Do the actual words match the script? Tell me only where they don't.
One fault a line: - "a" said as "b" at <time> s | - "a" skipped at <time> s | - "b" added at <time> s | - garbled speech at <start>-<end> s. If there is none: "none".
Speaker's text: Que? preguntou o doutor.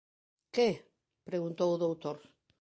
none